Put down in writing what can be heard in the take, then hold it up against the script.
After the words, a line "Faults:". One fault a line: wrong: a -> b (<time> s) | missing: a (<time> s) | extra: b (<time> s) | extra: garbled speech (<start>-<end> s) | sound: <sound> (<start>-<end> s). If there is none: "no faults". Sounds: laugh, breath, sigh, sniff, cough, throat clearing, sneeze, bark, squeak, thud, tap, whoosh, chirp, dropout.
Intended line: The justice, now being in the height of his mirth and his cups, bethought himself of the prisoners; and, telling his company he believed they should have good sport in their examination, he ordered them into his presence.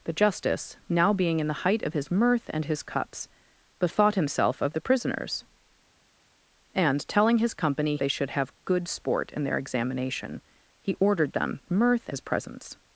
The justice, now being in the height of his mirth and his cups, bethought himself of the prisoners; and, telling his company they should have good sport in their examination, he ordered them mirth his presence.
Faults:
missing: he believed (8.0 s)
wrong: into -> mirth (11.7 s)